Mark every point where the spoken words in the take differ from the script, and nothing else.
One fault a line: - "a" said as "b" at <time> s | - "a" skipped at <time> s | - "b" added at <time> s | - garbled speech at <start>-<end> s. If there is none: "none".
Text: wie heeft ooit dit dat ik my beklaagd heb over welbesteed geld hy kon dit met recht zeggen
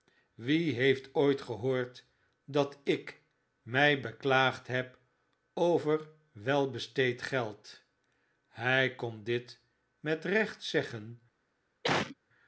- "dit" said as "gehoord" at 1.4 s